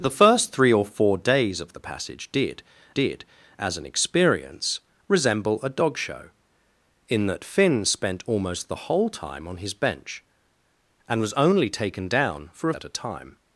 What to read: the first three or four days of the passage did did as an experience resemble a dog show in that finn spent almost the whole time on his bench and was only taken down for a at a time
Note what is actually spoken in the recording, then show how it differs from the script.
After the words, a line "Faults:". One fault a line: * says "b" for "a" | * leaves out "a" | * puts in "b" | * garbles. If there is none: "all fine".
the first three or four days of the passage did did as an experience resemble a dog show in that finn spent almost the whole time on his bench and was only taken down for a at a time
Faults:
all fine